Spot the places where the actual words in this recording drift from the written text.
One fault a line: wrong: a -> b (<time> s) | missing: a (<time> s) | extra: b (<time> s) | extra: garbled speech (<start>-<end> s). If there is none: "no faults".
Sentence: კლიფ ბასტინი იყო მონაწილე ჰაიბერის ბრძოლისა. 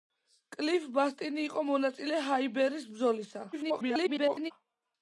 extra: garbled speech (3.5-4.5 s)